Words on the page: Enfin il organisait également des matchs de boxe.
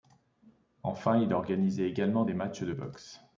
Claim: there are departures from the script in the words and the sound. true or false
false